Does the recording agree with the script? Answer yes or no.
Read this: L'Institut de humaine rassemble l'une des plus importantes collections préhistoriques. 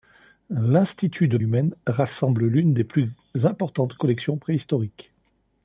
yes